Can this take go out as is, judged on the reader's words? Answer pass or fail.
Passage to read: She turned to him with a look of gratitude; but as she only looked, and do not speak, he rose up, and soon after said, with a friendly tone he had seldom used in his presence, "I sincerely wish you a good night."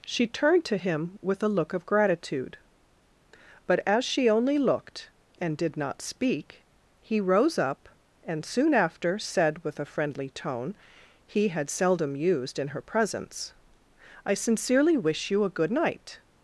fail